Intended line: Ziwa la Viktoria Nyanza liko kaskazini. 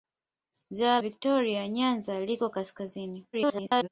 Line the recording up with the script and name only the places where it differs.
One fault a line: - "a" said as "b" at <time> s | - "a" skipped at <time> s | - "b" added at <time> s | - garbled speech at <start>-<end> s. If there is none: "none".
- "la" skipped at 1.0 s
- garbled speech at 3.3-3.9 s